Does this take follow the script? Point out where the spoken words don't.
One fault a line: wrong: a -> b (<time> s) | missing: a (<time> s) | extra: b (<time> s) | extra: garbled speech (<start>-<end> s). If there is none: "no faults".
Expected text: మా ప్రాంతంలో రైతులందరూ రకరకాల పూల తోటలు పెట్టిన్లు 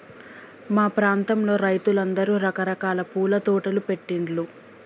no faults